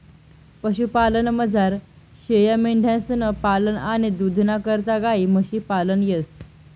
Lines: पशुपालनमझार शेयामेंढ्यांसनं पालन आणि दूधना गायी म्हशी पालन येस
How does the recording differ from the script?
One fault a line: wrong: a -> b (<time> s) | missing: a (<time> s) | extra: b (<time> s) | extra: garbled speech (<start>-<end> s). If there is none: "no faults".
extra: करता (4.7 s)